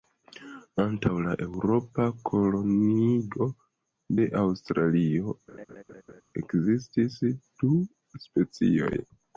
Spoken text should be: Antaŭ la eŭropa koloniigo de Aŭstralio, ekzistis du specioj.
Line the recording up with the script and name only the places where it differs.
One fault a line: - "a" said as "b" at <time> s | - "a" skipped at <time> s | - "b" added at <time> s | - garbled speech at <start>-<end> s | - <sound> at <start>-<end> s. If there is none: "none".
- laugh at 5.5-6.2 s